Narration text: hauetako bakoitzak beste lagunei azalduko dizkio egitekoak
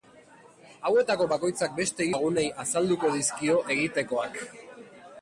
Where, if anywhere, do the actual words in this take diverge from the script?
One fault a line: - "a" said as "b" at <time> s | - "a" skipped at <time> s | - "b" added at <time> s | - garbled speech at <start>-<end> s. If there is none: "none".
none